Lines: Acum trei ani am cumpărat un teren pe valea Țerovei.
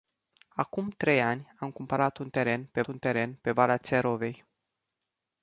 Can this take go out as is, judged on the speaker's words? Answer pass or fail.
fail